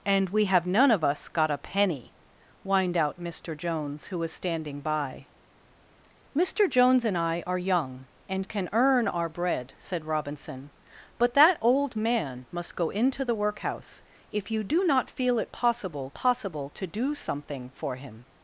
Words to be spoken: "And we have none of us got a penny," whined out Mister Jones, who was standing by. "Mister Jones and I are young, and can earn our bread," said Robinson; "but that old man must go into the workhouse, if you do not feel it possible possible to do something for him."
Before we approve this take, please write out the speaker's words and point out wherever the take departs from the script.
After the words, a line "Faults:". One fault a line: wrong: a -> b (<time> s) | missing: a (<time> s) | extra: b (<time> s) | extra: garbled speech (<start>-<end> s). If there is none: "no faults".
"And we have none of us got a penny," whined out Mister Jones, who was standing by. "Mister Jones and I are young, and can earn our bread," said Robinson; "but that old man must go into the workhouse, if you do not feel it possible possible to do something for him."
Faults:
no faults